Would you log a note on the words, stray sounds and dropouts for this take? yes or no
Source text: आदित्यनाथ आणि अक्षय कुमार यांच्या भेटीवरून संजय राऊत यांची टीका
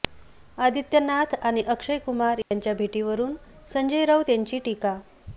yes